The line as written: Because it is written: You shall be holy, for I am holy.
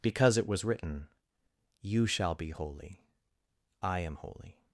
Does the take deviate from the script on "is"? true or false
true